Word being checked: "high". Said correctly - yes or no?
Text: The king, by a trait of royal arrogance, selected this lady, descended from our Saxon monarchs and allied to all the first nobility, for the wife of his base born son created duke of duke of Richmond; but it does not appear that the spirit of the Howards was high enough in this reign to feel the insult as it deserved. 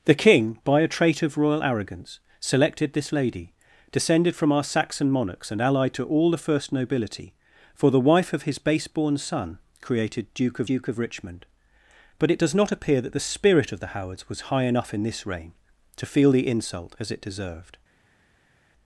yes